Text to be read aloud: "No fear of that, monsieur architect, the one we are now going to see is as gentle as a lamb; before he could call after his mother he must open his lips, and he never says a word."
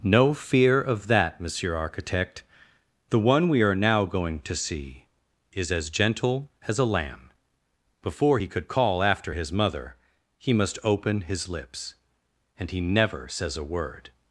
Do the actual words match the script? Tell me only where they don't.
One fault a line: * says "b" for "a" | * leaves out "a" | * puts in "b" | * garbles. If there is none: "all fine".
all fine